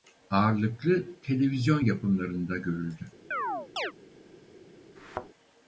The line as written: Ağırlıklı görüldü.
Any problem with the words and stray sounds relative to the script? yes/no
yes